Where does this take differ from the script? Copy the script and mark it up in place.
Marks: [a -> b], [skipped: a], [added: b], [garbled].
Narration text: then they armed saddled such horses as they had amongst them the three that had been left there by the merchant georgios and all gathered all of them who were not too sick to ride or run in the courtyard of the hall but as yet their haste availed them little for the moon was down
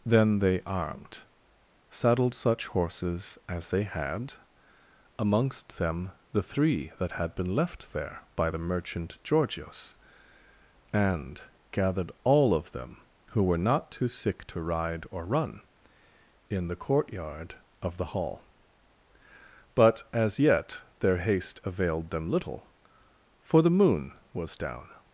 then they armed saddled such horses as they had amongst them the three that had been left there by the merchant georgios and [skipped: all] gathered all of them who were not too sick to ride or run in the courtyard of the hall but as yet their haste availed them little for the moon was down